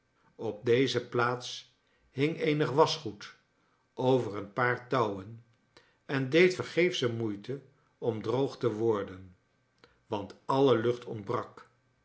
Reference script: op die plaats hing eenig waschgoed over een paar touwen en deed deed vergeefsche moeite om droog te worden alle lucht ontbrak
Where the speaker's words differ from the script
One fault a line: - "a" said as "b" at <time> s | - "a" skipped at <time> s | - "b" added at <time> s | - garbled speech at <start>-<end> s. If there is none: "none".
- "die" said as "deze" at 0.7 s
- "deed" skipped at 6.5 s
- "want" added at 10.1 s